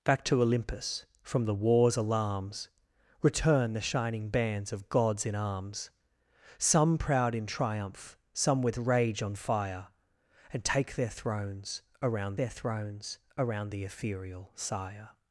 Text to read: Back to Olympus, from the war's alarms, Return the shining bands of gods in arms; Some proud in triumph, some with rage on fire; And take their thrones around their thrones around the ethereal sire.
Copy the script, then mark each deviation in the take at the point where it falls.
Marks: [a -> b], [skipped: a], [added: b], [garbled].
Back to Olympus, from the war's alarms, Return the shining bands of gods in arms; Some proud in triumph, some with rage on fire; And take their thrones around their thrones around the ethereal sire.